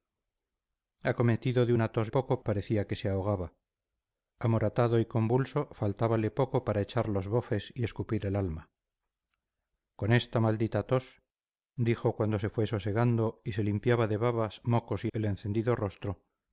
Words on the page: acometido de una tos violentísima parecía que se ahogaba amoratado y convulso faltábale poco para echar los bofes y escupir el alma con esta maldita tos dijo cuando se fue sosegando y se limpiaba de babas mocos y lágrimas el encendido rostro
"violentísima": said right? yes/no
no